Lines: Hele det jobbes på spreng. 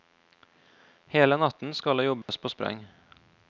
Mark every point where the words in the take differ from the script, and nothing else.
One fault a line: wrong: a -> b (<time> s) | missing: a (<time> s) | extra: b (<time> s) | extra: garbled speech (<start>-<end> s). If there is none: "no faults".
extra: natten skal (1.4 s)